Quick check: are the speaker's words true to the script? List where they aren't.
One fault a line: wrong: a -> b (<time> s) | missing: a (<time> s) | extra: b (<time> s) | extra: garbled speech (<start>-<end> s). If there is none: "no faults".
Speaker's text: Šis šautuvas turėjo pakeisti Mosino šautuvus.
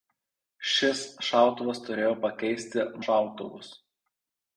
missing: Mosino (2.9 s)